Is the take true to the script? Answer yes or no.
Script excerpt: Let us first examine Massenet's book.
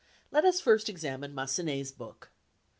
yes